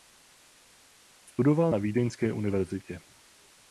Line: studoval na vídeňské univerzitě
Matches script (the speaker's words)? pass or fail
pass